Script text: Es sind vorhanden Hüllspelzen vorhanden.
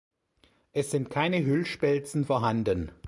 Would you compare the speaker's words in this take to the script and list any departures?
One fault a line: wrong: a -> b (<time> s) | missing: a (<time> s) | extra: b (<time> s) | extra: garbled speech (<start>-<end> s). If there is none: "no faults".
wrong: vorhanden -> keine (1.1 s)